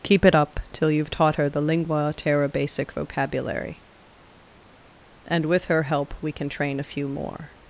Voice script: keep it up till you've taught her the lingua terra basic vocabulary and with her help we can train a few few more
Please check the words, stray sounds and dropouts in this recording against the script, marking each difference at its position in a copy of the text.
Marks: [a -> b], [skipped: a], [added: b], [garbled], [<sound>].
keep it up till you've taught her the lingua terra basic vocabulary and with her help we can train a few [skipped: few] more